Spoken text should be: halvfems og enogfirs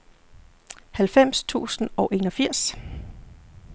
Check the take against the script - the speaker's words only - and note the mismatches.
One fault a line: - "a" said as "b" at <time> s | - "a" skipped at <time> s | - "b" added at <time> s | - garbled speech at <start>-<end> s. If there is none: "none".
- "tusind" added at 1.4 s